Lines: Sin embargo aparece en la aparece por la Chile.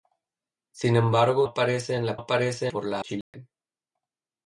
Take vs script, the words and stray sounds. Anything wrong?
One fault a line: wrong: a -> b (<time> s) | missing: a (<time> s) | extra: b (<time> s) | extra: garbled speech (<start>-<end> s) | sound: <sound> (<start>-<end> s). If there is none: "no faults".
sound: dropout (3.2-3.3 s)